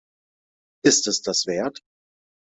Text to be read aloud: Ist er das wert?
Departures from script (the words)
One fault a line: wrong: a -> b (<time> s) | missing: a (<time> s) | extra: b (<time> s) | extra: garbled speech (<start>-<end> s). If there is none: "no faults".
wrong: er -> es (1.1 s)